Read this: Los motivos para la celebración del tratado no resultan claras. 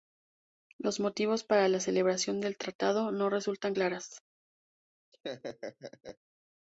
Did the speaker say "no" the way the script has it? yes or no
yes